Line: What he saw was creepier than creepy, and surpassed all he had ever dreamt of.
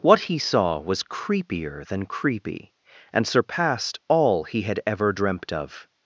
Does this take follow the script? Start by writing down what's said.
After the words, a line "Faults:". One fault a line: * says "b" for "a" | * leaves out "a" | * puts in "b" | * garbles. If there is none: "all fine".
What he saw was creepier than creepy, and surpassed all he had ever dreamt of.
Faults:
all fine